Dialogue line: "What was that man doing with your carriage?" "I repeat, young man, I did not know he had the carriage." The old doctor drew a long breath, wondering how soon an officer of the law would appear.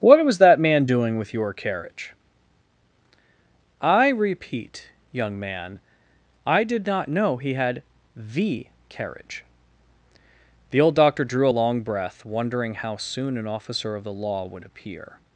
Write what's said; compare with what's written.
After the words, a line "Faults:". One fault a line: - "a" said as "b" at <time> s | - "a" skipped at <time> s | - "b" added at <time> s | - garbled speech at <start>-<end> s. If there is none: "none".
"What was that man doing with your carriage?" "I repeat, young man, I did not know he had the carriage." The old doctor drew a long breath, wondering how soon an officer of the law would appear.
Faults:
none